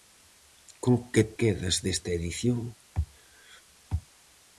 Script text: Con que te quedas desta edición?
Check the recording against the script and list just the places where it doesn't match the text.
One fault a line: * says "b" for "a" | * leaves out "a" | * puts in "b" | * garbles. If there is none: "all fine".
* leaves out "te"